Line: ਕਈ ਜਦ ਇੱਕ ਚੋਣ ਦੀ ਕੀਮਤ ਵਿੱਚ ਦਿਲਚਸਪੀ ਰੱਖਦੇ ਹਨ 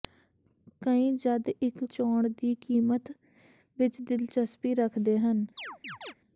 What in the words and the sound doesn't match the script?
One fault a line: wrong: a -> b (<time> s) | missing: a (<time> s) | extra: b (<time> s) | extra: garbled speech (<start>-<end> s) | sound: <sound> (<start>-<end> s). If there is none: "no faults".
sound: chirp (5.6-6.1 s)